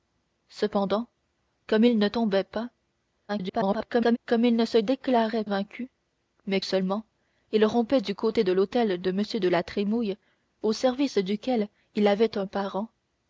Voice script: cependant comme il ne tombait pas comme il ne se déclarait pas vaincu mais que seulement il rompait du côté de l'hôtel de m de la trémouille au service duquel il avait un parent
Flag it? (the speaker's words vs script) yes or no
yes